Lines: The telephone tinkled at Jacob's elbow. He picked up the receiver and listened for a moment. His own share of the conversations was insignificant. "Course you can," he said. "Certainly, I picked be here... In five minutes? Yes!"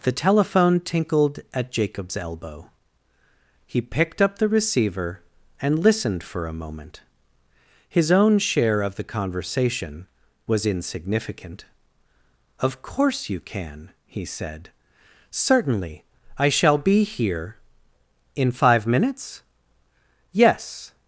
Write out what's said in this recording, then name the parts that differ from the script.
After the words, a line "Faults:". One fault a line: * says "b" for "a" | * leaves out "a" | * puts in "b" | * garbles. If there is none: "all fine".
The telephone tinkled at Jacob's elbow. He picked up the receiver and listened for a moment. His own share of the conversation was insignificant. "Of course you can," he said. "Certainly, I shall be here... In five minutes? Yes!"
Faults:
* says "conversation" for "conversations"
* puts in "Of"
* says "shall" for "picked"